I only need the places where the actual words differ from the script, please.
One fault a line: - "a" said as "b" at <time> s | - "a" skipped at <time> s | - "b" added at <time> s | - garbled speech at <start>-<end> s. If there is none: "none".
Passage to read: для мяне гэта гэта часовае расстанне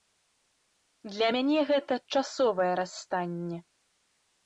- "гэта" skipped at 1.9 s